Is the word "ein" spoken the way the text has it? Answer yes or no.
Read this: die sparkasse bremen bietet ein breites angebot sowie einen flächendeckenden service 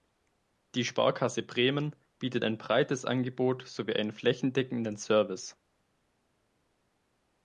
yes